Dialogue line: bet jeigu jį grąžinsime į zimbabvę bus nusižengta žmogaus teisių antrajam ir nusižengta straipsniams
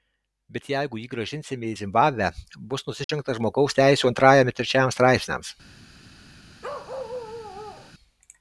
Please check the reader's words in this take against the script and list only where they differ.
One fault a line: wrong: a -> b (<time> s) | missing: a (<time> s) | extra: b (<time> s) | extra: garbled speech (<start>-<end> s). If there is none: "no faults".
wrong: nusižengta -> trečiajam (4.6 s)